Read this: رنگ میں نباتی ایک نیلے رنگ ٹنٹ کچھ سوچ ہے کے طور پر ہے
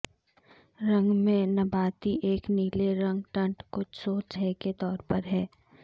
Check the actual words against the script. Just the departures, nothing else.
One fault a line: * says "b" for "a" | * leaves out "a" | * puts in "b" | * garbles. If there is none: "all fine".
all fine